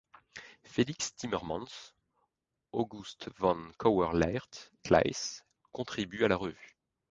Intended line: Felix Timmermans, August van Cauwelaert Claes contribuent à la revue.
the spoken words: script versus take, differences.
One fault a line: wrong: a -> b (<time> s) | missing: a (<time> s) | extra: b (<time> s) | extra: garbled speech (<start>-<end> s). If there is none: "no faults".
no faults